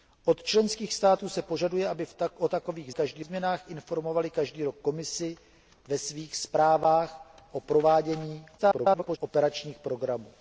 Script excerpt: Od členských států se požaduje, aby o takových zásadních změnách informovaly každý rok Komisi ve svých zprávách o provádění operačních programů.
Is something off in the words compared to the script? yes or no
yes